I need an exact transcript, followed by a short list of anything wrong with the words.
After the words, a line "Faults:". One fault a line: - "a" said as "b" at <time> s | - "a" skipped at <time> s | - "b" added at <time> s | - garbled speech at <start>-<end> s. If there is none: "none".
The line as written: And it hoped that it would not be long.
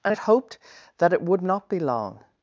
And it hoped that it would not be long.
Faults:
none